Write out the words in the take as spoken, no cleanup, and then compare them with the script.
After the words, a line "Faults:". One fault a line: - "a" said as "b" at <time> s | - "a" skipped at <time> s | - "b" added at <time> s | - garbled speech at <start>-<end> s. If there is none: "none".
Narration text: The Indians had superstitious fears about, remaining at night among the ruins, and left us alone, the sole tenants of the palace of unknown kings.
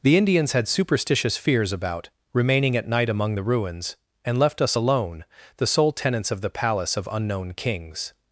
The Indians had superstitious fears about, remaining at night among the ruins, and left us alone, the sole tenants of the palace of unknown kings.
Faults:
none